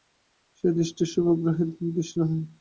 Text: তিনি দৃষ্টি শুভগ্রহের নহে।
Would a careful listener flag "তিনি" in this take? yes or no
yes